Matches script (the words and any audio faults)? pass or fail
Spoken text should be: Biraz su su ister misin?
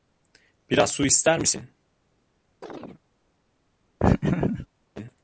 fail